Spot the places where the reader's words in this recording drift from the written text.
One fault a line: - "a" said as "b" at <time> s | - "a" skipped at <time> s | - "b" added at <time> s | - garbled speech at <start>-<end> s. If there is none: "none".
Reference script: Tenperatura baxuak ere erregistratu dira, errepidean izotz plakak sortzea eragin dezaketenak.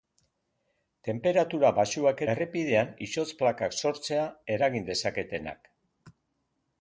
- "ere erregistratu dira" skipped at 2.2 s